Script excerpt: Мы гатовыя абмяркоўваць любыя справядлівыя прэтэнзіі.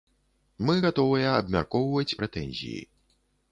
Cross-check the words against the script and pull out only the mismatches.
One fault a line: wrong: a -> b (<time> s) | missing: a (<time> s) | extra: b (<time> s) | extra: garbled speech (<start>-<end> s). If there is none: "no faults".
missing: любыя справядлівыя (2.2 s)